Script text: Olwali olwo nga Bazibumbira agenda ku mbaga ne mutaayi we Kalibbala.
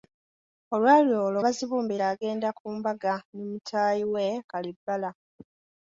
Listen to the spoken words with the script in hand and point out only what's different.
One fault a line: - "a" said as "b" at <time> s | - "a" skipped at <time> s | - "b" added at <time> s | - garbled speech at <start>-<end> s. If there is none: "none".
- "nga" skipped at 1.4 s